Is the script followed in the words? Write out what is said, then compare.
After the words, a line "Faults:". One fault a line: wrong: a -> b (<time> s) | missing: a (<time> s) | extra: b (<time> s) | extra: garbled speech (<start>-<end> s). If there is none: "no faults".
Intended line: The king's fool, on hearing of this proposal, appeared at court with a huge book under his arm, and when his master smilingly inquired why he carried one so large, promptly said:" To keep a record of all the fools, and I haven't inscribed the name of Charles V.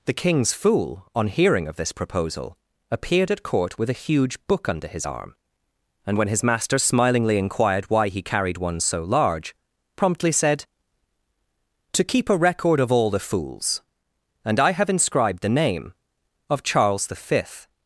The king's fool, on hearing of this proposal, appeared at court with a huge book under his arm, and when his master smilingly inquired why he carried one so large, promptly said:" To keep a record of all the fools, and I have inscribed the name of Charles V.
Faults:
wrong: haven't -> have (14.7 s)